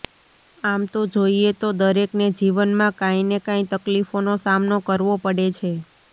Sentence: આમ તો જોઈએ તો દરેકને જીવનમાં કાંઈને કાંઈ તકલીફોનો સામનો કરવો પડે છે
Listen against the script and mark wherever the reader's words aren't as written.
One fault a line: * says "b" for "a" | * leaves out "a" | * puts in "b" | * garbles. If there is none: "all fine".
all fine